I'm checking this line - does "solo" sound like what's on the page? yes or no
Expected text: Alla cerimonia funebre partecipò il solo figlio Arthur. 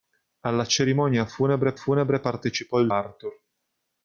no